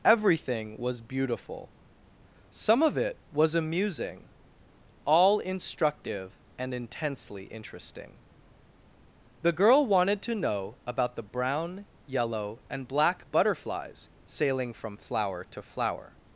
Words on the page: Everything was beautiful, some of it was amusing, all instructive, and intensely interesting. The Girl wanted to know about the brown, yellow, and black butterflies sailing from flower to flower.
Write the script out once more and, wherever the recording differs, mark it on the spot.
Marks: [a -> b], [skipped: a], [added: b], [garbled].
Everything was beautiful, some of it was amusing, all instructive, and intensely interesting. The Girl wanted to know about the brown, yellow, and black butterflies sailing from flower to flower.